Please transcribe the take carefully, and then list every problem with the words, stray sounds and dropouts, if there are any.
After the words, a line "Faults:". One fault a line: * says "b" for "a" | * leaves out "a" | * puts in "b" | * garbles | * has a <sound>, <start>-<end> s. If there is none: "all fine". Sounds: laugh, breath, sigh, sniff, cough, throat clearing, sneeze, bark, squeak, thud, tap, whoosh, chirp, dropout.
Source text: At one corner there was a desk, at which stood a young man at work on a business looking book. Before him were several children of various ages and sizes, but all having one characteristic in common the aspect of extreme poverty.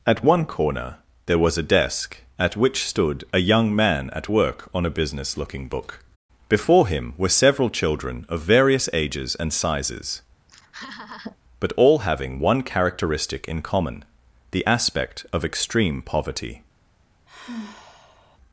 At one corner there was a desk, at which stood a young man at work on a business looking book. Before him were several children of various ages and sizes, but all having one characteristic in common the aspect of extreme poverty.
Faults:
* has a laugh, 10.5-11.4 s
* has a sigh, 17.3-18.4 s